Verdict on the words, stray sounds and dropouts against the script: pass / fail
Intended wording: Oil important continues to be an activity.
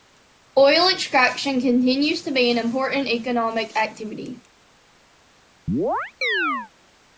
fail